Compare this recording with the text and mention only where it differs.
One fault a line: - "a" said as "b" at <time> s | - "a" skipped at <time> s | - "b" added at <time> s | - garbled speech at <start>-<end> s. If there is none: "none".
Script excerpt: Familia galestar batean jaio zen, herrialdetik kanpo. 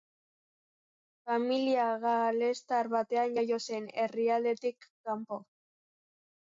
none